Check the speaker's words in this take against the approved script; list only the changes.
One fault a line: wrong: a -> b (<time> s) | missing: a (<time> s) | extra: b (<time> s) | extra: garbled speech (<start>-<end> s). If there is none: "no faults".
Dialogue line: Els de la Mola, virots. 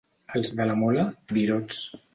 no faults